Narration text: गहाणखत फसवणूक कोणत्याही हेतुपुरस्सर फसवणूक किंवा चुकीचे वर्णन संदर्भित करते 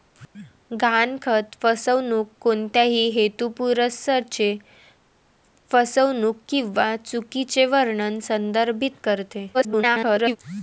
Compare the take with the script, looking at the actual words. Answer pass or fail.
fail